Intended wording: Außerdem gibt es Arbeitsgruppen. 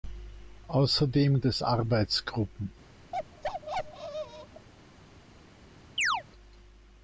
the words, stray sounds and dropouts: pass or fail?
fail